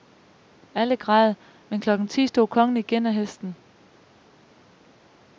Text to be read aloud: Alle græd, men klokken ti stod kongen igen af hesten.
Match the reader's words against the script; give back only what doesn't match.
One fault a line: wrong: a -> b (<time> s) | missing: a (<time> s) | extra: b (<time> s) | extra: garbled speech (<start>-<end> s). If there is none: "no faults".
no faults